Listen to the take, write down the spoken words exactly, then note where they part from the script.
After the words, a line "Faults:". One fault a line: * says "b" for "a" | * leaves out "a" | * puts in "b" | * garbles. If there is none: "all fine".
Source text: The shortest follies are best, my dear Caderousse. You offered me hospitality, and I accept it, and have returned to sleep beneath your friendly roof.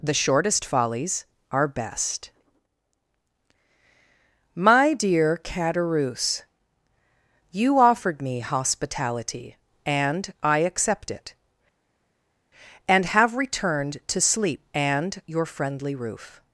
The shortest follies are best, my dear Caderousse. You offered me hospitality, and I accept it, and have returned to sleep and your friendly roof.
Faults:
* says "and" for "beneath"